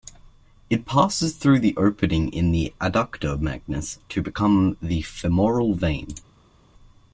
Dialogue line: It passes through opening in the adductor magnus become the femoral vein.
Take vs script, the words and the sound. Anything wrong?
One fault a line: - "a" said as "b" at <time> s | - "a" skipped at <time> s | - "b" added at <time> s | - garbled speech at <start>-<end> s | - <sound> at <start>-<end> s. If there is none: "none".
- "the" added at 1.6 s
- "to" added at 4.1 s